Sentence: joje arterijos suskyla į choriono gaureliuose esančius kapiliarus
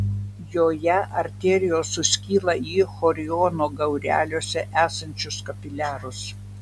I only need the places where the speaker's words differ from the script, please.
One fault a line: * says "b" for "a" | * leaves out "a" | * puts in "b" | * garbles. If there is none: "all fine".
all fine